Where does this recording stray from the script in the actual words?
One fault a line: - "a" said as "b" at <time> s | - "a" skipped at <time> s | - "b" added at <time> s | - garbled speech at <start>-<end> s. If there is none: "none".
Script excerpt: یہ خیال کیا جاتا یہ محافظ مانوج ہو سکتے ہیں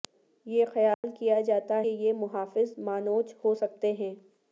none